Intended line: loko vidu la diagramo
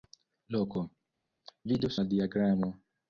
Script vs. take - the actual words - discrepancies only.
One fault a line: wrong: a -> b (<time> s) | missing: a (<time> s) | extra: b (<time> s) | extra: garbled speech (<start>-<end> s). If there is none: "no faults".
no faults